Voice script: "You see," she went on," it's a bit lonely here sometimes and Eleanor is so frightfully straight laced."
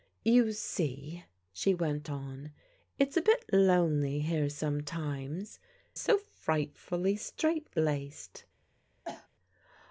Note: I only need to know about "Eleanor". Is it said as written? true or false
false